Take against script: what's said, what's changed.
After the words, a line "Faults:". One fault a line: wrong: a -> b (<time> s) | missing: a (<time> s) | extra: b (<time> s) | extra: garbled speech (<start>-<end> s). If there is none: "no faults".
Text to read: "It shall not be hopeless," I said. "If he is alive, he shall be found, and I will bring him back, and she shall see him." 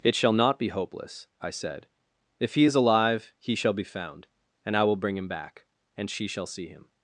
"It shall not be hopeless," I said. "If he is alive, he shall be found, and I will bring him back, and she shall see him."
Faults:
no faults